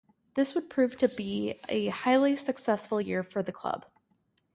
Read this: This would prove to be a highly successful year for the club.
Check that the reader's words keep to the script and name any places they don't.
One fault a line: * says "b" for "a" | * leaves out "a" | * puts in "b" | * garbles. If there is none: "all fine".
all fine